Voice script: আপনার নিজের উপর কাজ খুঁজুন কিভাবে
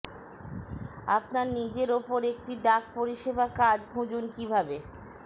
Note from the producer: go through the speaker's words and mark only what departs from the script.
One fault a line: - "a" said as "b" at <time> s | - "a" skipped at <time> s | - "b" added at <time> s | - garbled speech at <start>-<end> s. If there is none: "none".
- "একটি ডাক পরিষেবা" added at 2.3 s